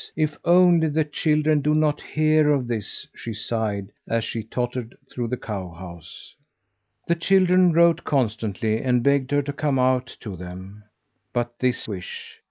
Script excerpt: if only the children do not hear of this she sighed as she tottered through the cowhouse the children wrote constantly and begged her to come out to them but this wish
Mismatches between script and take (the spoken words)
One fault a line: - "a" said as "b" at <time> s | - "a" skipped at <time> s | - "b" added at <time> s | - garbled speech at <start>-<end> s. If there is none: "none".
none